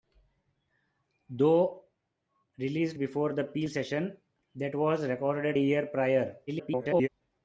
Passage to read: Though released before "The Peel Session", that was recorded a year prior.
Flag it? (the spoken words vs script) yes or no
yes